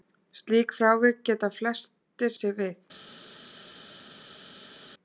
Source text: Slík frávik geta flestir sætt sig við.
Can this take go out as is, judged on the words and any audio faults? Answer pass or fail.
fail